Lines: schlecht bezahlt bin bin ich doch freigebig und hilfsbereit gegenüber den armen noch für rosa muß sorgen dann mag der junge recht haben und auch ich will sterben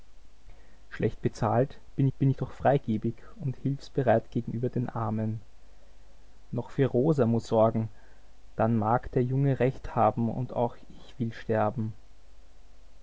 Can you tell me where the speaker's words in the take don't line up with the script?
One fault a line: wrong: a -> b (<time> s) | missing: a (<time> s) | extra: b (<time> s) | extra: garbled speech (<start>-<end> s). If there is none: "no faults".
no faults